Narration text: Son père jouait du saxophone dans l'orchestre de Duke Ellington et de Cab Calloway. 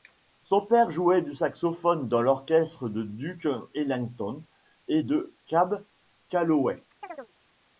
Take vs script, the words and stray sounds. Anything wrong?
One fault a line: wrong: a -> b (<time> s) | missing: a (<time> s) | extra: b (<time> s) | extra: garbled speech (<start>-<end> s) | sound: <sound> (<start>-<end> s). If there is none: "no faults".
sound: chirp (7.0-7.3 s)